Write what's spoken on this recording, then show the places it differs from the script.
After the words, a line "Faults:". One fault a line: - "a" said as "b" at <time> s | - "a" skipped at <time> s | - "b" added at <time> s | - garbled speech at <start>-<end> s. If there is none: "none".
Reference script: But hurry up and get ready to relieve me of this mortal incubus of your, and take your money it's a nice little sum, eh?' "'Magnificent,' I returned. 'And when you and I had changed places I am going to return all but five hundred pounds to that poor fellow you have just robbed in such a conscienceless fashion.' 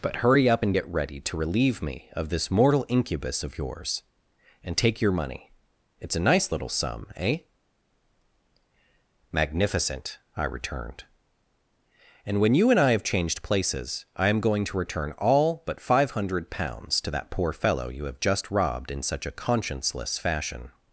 But hurry up and get ready to relieve me of this mortal incubus of yours, and take your money it's a nice little sum, eh?' "'Magnificent,' I returned. 'And when you and I have changed places I am going to return all but five hundred pounds to that poor fellow you have just robbed in such a conscienceless fashion.'
Faults:
- "your" said as "yours" at 3.6 s
- "had" said as "have" at 12.9 s